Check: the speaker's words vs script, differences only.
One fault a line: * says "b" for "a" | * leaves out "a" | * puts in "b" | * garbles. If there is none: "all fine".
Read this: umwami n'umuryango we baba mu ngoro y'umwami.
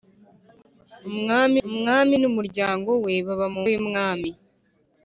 * puts in "umwami"
* leaves out "ngoro"